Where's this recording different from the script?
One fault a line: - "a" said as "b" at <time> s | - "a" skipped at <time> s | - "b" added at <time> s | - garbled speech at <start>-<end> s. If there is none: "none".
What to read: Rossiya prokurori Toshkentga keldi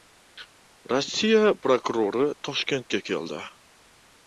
none